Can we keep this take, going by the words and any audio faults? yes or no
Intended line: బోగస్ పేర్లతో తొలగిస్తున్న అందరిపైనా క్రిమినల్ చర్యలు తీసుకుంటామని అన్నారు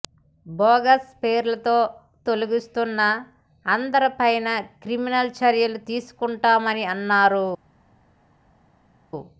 yes